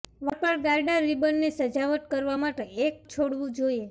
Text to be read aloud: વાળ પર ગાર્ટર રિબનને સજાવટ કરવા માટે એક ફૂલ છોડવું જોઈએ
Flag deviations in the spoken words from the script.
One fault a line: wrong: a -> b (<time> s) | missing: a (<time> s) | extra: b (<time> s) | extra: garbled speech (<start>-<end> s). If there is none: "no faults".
missing: ફૂલ (3.1 s)